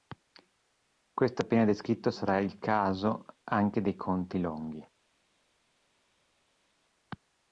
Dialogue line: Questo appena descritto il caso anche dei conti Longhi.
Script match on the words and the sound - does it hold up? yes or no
no